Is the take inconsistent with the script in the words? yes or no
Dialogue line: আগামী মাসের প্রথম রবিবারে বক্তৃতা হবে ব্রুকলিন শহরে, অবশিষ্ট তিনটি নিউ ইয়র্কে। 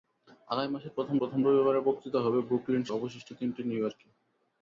yes